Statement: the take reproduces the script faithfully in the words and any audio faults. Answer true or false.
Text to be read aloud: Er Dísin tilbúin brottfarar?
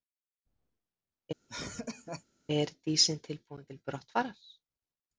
false